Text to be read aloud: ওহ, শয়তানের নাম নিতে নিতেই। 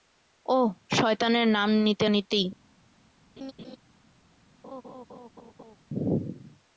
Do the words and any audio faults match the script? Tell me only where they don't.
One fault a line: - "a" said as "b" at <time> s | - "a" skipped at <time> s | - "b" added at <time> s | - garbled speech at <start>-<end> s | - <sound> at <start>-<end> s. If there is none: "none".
- laugh at 3.4-3.8 s
- laugh at 4.6-5.8 s